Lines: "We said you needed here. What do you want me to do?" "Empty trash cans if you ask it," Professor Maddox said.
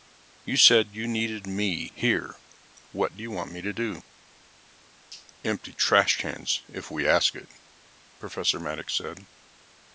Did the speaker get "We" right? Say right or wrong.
wrong